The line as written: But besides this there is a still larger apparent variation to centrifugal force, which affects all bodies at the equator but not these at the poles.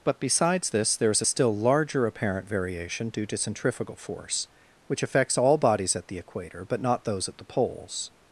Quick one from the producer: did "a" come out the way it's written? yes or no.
yes